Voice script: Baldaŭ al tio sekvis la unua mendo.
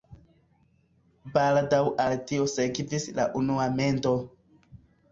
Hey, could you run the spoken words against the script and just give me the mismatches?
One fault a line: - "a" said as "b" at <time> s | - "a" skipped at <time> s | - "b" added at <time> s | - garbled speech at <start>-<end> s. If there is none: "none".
none